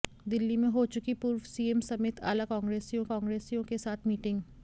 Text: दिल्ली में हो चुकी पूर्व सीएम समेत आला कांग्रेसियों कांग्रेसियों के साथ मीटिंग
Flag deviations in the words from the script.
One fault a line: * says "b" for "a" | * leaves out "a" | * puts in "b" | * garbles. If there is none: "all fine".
all fine